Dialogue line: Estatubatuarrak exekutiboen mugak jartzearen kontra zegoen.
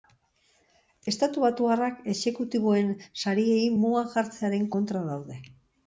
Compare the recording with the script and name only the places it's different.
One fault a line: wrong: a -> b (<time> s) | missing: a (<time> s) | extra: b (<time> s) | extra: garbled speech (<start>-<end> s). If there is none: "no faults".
extra: sariei (3.2 s)
wrong: zegoen -> daude (5.1 s)